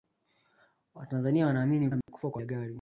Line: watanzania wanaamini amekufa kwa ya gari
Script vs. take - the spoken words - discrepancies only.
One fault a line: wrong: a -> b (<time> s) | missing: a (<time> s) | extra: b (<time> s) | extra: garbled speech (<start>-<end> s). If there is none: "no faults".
no faults